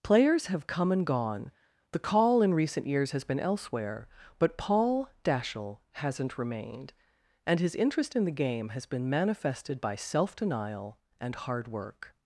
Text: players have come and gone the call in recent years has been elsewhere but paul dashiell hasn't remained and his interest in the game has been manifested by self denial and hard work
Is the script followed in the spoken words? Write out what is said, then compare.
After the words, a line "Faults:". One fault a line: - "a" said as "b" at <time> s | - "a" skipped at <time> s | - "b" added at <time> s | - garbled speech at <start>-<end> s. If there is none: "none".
players have come and gone the call in recent years has been elsewhere but paul dashiell hasn't remained and his interest in the game has been manifested by self denial and hard work
Faults:
none